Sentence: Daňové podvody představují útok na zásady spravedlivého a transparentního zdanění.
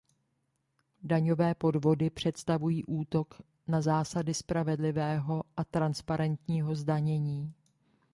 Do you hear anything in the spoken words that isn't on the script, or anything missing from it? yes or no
no